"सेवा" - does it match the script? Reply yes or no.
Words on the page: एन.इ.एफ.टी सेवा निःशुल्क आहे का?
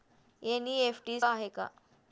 no